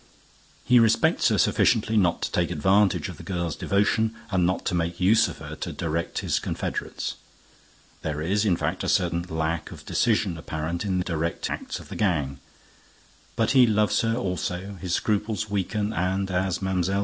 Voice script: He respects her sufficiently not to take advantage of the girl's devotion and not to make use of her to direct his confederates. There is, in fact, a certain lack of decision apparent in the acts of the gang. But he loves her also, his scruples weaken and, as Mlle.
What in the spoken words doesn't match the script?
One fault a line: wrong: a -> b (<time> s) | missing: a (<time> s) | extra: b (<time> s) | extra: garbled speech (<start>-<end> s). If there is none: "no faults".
wrong: the -> direct (11.0 s)